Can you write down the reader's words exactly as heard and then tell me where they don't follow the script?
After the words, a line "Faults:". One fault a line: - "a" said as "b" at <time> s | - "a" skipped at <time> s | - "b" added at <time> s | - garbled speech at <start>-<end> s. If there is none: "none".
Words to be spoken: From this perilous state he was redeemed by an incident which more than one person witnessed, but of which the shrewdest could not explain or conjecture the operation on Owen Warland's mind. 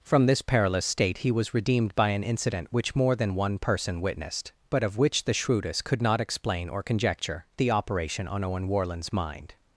From this perilous state he was redeemed by an incident which more than one person witnessed, but of which the shrewdest could not explain or conjecture the operation on Owen Warland's mind.
Faults:
none